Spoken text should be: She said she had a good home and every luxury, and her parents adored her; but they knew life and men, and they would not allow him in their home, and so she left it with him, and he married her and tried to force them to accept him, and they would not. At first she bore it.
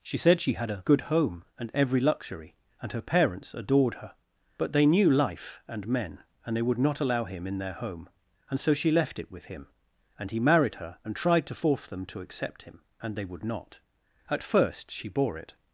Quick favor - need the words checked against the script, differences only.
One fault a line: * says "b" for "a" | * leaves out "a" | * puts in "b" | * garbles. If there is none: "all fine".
all fine